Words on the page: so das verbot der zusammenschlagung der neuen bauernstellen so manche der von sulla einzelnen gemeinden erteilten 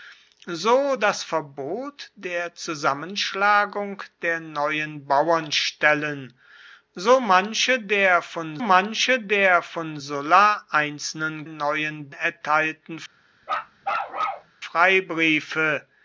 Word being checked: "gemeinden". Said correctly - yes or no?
no